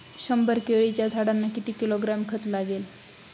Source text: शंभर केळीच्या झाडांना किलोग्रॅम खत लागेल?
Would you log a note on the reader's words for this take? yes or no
yes